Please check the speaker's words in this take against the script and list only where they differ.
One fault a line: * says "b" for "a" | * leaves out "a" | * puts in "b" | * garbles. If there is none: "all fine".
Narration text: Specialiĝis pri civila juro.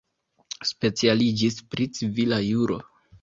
all fine